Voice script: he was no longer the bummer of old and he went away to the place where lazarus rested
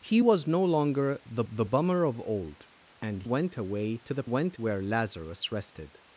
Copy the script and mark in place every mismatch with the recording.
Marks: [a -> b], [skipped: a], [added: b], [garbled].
he was no longer the [added: the] bummer of old and [skipped: he] went away to the [place -> went] where lazarus rested